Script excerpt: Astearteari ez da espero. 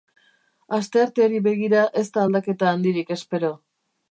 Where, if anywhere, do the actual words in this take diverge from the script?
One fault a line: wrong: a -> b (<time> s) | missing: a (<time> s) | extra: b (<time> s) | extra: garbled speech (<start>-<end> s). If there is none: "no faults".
extra: begira (1.5 s)
extra: aldaketa handirik (2.3 s)